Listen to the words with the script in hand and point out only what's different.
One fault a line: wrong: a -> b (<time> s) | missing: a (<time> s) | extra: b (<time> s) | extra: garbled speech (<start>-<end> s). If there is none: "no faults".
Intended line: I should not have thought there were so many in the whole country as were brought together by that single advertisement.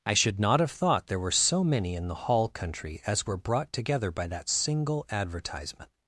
wrong: whole -> hall (2.1 s)